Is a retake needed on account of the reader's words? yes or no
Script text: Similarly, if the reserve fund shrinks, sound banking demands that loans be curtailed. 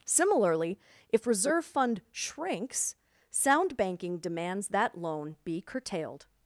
yes